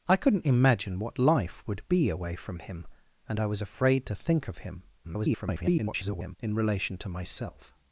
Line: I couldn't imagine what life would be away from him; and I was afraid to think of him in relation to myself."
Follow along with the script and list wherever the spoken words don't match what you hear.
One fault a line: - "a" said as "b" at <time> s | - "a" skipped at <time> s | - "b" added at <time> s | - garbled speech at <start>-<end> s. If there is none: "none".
- garbled speech at 5.0-6.4 s